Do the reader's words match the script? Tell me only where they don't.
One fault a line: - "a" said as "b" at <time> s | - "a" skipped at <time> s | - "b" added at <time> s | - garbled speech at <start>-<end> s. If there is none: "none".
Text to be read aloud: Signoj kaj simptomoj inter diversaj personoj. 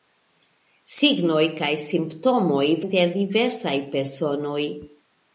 none